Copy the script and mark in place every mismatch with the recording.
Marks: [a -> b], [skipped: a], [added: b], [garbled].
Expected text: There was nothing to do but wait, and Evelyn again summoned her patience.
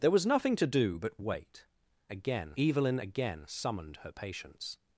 There was nothing to do but wait, [and -> again] Evelyn again summoned her patience.